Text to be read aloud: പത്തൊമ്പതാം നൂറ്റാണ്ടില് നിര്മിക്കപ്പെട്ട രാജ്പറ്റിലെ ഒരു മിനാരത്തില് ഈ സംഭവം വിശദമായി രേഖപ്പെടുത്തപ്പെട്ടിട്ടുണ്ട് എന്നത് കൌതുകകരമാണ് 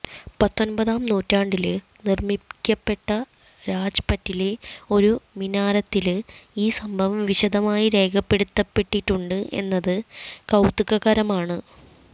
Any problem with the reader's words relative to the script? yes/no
no